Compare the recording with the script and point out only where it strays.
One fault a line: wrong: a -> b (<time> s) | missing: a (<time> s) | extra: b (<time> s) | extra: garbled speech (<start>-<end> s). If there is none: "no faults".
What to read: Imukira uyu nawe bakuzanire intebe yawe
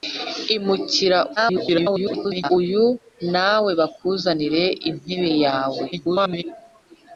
extra: garbled speech (1.4-2.5 s)
extra: garbled speech (5.9-6.4 s)